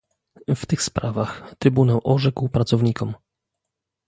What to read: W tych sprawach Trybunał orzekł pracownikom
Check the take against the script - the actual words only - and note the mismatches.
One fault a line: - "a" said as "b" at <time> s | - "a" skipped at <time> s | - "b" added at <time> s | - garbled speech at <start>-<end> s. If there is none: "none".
none